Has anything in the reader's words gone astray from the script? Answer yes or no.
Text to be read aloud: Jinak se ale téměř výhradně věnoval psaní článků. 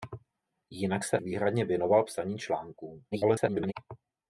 yes